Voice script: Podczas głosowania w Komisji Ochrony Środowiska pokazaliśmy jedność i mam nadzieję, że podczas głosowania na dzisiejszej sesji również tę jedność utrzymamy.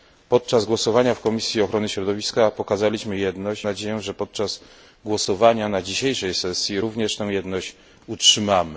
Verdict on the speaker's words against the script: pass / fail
fail